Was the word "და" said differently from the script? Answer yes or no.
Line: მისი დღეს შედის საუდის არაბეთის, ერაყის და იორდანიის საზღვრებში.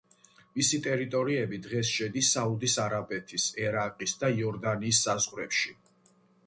no